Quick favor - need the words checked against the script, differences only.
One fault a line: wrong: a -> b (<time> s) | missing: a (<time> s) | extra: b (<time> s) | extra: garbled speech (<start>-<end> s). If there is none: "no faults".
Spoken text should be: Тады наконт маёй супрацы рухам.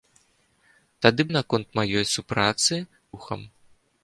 no faults